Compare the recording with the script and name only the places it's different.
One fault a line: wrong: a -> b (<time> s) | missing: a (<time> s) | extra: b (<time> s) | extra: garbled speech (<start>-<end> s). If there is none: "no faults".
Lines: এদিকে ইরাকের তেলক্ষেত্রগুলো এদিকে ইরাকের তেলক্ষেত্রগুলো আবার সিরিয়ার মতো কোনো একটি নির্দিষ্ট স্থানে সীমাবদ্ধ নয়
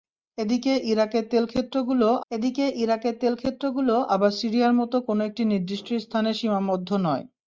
no faults